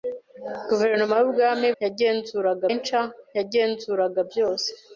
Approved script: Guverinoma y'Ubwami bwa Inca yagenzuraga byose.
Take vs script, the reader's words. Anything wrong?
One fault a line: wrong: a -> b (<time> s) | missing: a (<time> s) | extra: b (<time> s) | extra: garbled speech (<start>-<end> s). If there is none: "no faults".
wrong: bwa -> yagenzuraga (1.8 s)